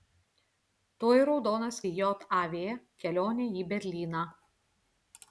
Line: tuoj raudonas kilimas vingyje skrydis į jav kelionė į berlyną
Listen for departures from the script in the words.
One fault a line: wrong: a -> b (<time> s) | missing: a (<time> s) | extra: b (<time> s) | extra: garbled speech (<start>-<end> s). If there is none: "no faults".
missing: kilimas vingyje skrydis (1.8 s)